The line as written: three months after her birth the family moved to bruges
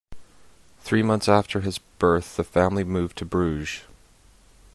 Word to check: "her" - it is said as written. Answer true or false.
false